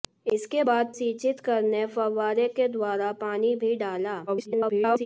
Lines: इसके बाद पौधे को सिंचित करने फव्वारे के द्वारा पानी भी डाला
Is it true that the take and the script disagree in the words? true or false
true